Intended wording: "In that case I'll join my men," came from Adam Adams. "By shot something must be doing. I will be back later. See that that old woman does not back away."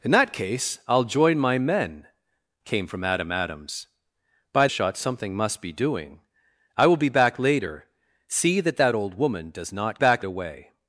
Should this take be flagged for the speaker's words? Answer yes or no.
no